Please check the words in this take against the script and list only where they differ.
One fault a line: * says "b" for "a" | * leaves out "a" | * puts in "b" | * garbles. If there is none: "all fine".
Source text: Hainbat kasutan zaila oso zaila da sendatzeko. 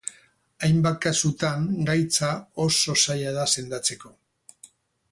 * says "gaitza" for "zaila"